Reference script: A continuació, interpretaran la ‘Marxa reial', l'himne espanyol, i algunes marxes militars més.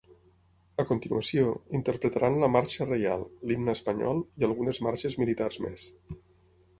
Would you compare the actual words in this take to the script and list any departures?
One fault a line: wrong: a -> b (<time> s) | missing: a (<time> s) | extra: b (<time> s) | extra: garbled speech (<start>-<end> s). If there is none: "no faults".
no faults